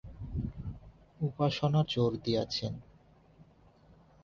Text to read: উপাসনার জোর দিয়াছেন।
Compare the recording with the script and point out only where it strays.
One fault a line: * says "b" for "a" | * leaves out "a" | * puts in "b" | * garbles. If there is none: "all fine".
all fine